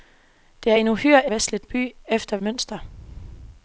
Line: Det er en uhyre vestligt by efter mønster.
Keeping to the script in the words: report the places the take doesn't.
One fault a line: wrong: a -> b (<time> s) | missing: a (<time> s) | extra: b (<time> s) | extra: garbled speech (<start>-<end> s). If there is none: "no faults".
no faults